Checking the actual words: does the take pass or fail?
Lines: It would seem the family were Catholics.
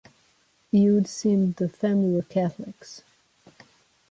pass